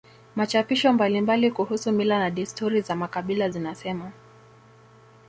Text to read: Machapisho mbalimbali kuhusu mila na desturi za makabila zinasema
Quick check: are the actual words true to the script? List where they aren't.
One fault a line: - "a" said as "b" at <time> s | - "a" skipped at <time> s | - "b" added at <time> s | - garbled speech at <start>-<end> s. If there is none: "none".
none